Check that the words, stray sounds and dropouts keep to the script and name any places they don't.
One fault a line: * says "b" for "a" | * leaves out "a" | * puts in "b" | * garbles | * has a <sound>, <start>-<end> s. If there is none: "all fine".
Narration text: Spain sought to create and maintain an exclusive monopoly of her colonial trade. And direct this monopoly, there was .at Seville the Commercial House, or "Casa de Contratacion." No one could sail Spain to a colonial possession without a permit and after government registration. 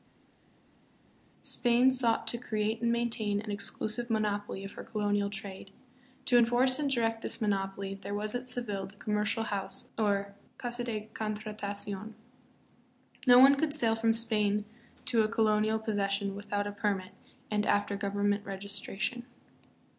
* puts in "To enforce"
* puts in "from"